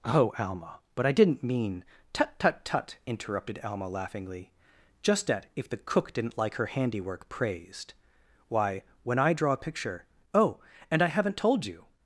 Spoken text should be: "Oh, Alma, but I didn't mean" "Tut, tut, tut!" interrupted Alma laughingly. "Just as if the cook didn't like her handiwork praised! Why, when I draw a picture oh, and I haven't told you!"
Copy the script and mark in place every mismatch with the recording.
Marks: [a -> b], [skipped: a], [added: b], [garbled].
"Oh, Alma, but I didn't mean" "Tut, tut, tut!" interrupted Alma laughingly. "Just [as -> at] if the cook didn't like her handiwork praised! Why, when I draw a picture oh, and I haven't told you!"